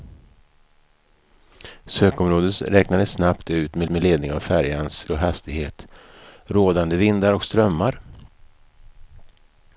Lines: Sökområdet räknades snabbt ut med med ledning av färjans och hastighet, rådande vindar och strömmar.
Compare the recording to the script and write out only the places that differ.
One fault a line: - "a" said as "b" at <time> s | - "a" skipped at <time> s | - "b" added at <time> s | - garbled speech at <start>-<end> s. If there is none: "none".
none